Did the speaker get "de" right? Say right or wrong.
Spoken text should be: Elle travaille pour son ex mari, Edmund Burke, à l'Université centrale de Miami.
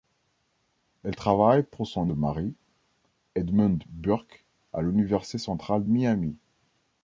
wrong